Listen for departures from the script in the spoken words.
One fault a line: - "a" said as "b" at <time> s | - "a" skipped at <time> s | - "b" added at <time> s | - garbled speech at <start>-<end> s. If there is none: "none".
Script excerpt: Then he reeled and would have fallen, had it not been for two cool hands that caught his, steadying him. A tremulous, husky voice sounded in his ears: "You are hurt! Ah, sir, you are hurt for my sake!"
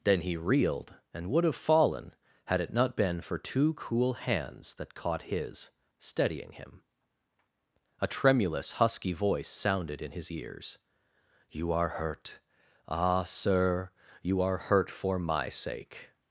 none